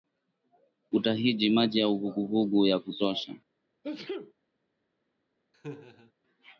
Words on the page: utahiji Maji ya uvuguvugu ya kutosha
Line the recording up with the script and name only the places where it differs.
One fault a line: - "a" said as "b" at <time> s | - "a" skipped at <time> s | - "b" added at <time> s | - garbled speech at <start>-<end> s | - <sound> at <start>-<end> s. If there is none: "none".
- sneeze at 3.8-4.3 s
- laugh at 5.5-6.1 s